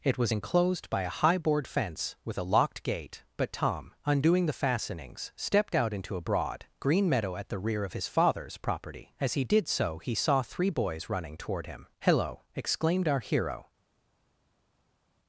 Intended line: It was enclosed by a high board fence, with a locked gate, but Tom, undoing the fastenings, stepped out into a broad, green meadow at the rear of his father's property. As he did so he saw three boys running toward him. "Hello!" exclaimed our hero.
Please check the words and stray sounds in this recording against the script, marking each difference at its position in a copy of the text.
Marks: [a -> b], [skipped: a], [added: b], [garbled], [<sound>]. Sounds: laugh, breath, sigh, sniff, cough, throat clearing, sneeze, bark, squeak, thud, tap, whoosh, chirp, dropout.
It was enclosed by a high board fence, with a locked gate, but Tom, undoing the fastenings, stepped out into a broad, green meadow at the rear of his father's property. As he did so he saw three boys running toward him. "Hello!" exclaimed our hero.